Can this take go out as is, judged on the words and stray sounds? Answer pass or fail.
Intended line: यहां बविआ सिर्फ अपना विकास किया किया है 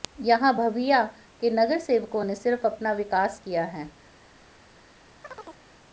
fail